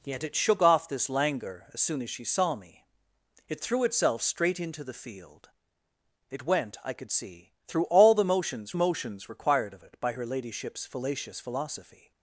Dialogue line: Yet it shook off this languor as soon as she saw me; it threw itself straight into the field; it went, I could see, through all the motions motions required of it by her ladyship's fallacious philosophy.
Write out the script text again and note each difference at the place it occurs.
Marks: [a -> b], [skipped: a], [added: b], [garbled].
Yet it shook off this languor as soon as she saw me; it threw itself straight into the field; it went, I could see, through all the motions motions required of it by her ladyship's fallacious philosophy.